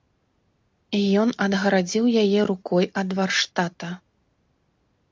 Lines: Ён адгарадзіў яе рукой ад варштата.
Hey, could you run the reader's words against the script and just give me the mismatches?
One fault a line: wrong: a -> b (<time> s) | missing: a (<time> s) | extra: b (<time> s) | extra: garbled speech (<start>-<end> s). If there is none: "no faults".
no faults